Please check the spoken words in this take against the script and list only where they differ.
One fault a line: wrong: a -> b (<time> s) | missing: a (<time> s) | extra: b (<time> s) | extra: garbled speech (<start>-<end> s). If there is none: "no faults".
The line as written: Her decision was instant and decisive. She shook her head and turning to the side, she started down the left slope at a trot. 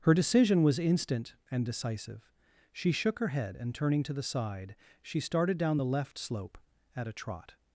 no faults